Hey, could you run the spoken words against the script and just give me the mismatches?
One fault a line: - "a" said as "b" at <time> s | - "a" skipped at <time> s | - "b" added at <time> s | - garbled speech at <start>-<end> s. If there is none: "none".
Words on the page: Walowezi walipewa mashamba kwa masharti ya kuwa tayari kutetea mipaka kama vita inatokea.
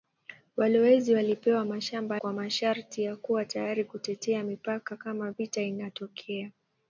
none